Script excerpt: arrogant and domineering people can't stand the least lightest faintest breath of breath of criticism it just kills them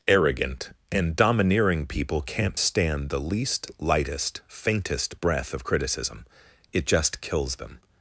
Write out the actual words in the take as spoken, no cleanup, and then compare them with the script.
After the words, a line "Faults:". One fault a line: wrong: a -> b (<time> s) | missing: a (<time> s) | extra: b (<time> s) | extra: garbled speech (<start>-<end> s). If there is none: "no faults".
arrogant and domineering people can't stand the least lightest faintest breath of criticism it just kills them
Faults:
missing: breath of (5.6 s)